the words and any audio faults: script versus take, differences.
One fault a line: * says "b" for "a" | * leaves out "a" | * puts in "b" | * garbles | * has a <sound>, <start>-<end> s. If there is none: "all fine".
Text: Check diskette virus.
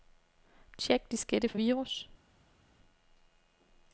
* puts in "for"